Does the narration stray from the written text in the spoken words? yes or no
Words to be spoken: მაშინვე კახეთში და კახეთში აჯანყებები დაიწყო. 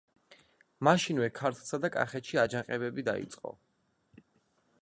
yes